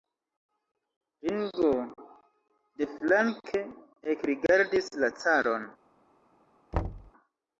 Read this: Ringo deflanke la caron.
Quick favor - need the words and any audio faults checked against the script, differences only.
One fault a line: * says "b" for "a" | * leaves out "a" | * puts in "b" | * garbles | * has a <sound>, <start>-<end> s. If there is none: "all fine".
* puts in "ekrigardis"
* has a thud, 6.7-7.1 s